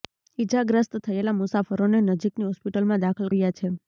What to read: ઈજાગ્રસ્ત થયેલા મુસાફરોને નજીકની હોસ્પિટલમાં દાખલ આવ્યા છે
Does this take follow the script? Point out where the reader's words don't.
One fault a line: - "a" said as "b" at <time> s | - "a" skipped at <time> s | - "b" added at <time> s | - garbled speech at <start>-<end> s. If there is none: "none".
none